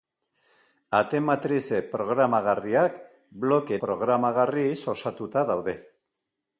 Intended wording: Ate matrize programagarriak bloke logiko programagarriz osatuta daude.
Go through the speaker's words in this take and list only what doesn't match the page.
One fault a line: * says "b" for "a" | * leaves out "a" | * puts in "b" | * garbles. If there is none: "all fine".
* leaves out "logiko"